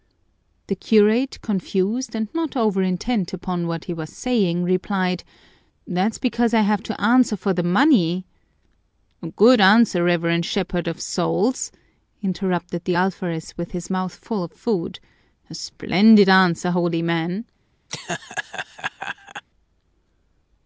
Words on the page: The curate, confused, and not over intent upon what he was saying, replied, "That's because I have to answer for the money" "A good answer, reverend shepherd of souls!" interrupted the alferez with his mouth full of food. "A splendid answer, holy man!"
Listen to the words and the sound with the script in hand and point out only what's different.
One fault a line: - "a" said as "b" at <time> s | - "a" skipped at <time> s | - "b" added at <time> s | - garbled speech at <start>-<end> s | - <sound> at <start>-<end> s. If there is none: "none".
- laugh at 17.9-19.4 s